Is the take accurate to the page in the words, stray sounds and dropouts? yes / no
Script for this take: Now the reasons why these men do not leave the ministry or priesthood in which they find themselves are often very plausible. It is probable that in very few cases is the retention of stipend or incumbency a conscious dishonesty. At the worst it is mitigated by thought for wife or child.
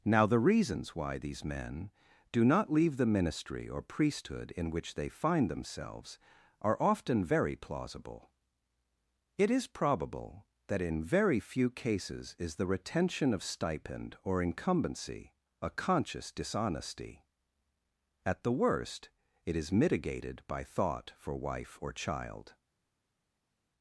yes